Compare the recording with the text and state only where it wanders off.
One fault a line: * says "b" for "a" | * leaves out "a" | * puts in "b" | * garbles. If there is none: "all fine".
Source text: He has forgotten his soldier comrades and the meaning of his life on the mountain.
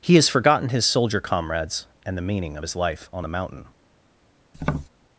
all fine